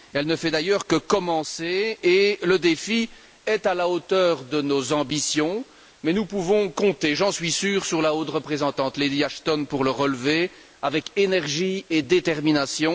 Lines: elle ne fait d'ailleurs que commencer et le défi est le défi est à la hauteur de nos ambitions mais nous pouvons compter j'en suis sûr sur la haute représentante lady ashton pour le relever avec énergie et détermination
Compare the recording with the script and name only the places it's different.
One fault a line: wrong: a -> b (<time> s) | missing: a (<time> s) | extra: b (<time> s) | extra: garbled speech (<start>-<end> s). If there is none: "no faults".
missing: le défi est (3.6 s)